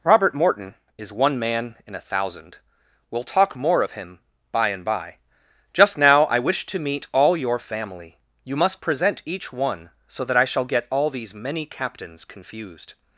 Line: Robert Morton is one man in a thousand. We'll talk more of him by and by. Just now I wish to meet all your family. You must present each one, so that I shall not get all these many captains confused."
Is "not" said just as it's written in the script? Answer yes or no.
no